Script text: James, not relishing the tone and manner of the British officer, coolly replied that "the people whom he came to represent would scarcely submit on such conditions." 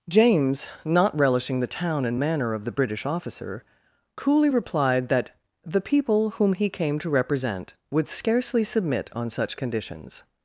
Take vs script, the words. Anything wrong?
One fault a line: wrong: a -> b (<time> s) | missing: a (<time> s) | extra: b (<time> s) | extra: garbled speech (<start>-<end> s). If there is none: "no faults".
wrong: tone -> town (1.7 s)